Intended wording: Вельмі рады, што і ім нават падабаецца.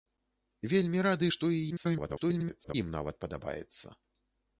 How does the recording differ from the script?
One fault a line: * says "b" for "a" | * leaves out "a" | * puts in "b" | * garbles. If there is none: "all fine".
* garbles